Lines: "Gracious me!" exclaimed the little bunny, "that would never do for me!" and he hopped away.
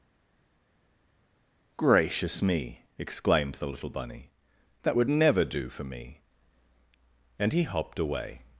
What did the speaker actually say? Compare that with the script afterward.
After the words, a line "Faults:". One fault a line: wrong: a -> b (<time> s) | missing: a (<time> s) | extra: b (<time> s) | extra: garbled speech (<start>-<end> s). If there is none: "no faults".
"Gracious me!" exclaimed the little bunny, "that would never do for me!" and he hopped away.
Faults:
no faults